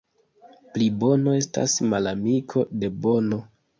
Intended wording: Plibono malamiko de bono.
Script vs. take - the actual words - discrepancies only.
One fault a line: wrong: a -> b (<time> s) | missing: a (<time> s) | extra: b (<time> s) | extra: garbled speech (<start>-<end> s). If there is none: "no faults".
extra: estas (1.4 s)